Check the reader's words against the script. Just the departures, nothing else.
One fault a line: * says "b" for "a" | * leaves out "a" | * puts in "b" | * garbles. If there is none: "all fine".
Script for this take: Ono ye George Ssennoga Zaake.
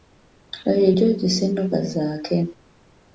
* says "Oyo" for "Ono"